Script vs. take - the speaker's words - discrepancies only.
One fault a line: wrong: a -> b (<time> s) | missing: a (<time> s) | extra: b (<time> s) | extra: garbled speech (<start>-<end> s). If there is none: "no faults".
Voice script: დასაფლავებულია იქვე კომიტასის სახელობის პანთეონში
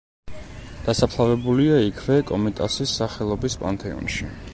no faults